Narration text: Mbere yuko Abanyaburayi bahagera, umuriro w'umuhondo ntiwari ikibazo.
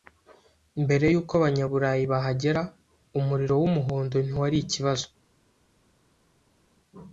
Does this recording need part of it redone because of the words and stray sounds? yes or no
no